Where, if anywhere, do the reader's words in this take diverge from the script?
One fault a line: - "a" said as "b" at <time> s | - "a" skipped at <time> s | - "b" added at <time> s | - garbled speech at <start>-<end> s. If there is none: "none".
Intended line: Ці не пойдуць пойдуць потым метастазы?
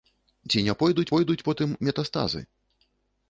none